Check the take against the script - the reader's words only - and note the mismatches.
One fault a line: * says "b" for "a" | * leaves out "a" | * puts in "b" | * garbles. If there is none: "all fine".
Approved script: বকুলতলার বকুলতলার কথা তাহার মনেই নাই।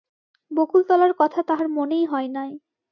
* leaves out "বকুলতলার"
* puts in "হয়"